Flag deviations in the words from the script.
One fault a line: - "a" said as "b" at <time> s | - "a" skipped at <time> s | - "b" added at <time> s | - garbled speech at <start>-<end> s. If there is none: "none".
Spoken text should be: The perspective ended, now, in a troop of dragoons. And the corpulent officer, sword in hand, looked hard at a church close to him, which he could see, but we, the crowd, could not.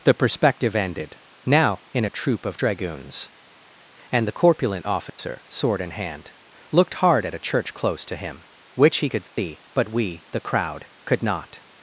none